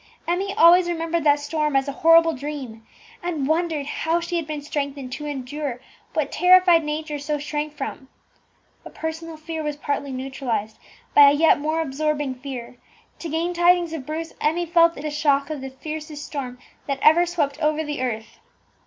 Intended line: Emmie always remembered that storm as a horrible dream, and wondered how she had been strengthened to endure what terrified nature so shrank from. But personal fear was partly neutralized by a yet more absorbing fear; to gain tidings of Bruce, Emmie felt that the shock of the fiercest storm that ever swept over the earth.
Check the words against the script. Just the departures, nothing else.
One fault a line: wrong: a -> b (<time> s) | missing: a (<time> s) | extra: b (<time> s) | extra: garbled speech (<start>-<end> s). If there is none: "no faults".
no faults